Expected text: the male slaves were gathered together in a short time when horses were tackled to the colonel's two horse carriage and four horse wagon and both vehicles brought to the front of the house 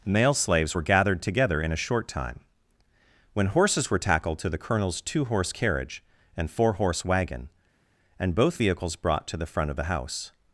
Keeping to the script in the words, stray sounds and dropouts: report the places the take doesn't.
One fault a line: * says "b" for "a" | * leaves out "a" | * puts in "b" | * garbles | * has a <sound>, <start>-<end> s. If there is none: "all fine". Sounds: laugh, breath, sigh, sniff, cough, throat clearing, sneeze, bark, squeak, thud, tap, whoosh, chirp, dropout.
* leaves out "the"